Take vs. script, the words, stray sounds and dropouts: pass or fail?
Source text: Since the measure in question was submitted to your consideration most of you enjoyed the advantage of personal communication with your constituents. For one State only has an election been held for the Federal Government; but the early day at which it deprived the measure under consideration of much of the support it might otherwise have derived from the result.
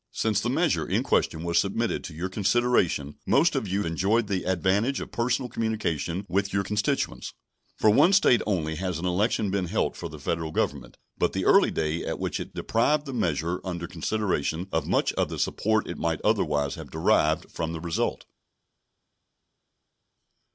pass